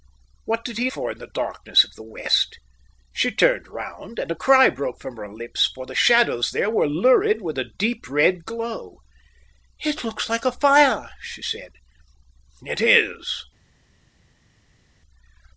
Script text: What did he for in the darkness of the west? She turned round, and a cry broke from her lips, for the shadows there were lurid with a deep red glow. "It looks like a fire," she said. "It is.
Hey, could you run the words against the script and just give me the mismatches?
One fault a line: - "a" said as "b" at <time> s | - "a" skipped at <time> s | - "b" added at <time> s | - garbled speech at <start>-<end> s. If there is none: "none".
none